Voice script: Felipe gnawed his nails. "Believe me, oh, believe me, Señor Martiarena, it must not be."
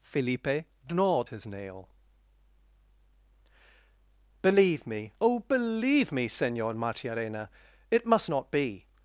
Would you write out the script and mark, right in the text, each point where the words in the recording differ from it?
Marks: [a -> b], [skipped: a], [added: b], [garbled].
Felipe gnawed his [nails. -> nail] "Believe me, oh, believe me, Señor Martiarena, it must not be."